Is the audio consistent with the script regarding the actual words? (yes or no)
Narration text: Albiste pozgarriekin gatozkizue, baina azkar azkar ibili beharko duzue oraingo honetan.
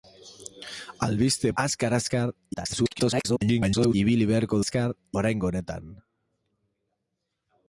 no